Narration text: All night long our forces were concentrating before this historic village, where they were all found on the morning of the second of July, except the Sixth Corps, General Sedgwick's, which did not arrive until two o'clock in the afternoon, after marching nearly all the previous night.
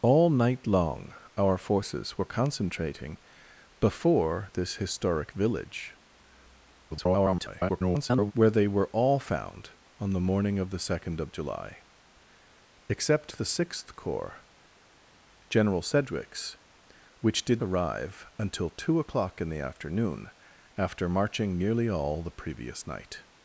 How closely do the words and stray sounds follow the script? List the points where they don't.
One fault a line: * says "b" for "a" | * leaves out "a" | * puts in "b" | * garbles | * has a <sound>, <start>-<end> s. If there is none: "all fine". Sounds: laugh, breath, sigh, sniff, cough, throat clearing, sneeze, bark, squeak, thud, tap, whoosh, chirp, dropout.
* garbles
* leaves out "not"